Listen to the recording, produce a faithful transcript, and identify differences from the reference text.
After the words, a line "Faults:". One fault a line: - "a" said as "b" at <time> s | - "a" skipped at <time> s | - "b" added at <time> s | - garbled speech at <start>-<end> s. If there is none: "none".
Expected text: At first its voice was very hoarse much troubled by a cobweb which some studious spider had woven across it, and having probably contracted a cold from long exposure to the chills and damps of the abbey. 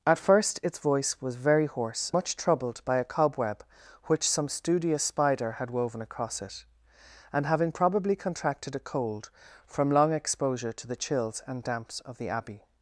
At first its voice was very hoarse much troubled by a cobweb which some studious spider had woven across it, and having probably contracted a cold from long exposure to the chills and damps of the abbey.
Faults:
none